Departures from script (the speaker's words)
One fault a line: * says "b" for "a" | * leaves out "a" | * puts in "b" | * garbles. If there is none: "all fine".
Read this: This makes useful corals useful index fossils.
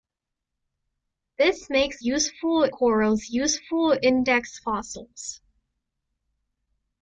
all fine